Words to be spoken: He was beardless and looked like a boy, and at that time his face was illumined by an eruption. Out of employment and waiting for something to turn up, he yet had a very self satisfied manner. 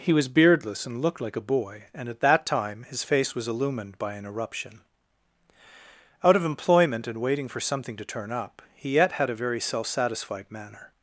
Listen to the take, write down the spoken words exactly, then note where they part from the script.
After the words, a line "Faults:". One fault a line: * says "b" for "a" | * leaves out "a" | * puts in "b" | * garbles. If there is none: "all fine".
He was beardless and looked like a boy, and at that time his face was illumined by an eruption. Out of employment and waiting for something to turn up, he yet had a very self satisfied manner.
Faults:
all fine